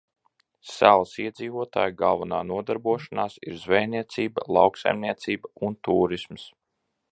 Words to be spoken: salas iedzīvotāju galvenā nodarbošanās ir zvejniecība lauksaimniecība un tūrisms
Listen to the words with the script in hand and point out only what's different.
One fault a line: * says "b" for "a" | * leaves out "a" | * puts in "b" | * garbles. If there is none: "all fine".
all fine